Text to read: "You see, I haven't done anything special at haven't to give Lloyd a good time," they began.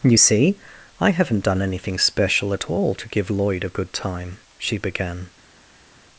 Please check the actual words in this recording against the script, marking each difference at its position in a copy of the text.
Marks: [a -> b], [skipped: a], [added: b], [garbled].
"You see, I haven't done anything special at [haven't -> all] to give Lloyd a good time," [they -> she] began.